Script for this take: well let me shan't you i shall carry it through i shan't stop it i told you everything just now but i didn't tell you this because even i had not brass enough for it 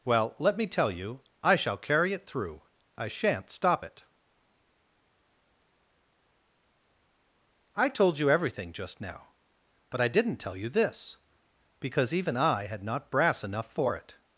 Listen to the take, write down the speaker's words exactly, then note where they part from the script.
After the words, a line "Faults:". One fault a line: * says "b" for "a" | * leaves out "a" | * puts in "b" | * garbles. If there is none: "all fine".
well let me tell you i shall carry it through i shan't stop it i told you everything just now but i didn't tell you this because even i had not brass enough for it
Faults:
* says "tell" for "shan't"